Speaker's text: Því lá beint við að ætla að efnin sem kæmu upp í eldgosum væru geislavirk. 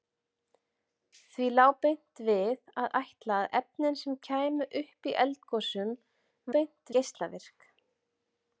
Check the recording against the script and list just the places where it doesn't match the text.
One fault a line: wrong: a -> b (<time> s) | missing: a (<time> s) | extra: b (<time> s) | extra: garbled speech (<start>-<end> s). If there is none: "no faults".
wrong: væru -> beint (6.6 s)